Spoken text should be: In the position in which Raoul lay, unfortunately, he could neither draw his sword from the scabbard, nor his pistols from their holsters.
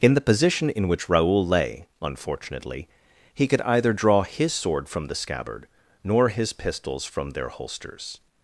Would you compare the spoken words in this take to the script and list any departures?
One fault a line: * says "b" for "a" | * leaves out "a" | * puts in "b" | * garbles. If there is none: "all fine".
* says "either" for "neither"